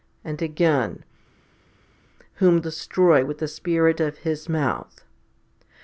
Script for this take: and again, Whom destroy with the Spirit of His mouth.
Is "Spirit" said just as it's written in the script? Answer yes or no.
yes